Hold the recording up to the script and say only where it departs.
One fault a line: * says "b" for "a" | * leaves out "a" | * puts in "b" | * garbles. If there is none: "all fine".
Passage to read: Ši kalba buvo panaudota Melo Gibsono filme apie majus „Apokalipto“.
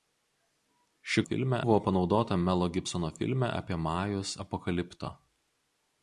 * says "filme" for "kalba"